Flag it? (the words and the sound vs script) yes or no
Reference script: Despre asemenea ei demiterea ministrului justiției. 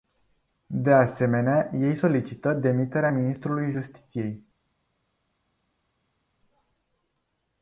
yes